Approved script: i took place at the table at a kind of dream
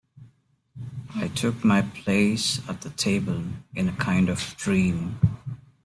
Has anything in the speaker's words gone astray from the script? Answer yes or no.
yes